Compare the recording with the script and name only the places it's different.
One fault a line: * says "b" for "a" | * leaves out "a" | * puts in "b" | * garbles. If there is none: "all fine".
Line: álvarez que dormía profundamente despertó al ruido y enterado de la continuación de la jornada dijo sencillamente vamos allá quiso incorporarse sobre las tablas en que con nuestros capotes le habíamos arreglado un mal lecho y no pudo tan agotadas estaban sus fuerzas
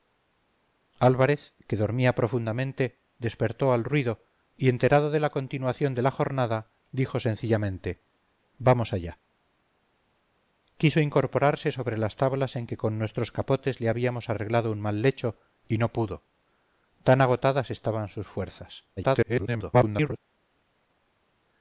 * garbles